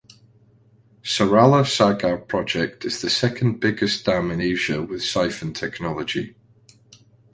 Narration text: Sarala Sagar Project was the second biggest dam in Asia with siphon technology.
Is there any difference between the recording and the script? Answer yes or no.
yes